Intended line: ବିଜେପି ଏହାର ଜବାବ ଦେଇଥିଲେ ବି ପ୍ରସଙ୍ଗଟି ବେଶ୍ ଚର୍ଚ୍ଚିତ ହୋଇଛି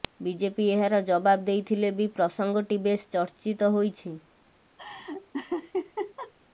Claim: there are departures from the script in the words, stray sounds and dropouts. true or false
true